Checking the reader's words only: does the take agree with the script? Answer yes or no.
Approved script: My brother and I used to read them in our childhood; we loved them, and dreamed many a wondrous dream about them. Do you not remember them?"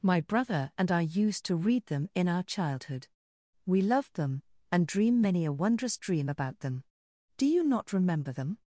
no